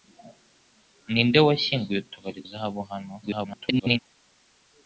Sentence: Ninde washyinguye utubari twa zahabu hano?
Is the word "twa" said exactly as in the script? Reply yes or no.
no